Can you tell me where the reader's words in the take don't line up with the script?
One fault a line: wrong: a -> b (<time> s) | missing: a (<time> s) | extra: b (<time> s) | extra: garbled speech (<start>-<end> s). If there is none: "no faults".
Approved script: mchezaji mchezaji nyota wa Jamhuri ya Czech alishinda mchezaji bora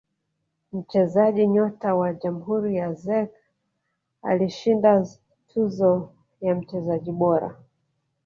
missing: mchezaji (1.5 s)
extra: tuzo ya (5.5 s)